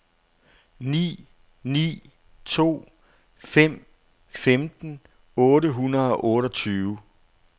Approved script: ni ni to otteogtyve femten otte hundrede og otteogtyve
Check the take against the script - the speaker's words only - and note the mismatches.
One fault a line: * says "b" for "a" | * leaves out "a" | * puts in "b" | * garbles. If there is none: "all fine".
* says "fem" for "otteogtyve"